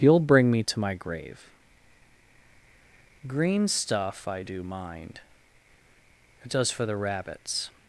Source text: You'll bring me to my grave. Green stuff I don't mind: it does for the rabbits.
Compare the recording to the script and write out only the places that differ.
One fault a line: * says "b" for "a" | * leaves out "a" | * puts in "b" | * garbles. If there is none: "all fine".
* says "do" for "don't"